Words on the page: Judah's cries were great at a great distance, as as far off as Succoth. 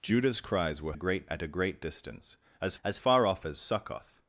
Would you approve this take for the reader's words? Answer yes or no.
yes